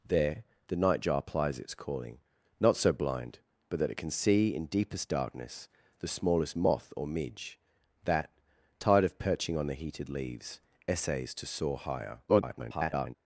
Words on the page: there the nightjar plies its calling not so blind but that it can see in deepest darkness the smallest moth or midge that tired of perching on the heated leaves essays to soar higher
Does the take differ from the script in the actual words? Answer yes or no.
yes